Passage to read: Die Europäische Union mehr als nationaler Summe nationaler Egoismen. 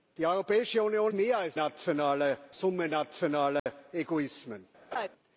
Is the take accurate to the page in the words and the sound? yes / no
no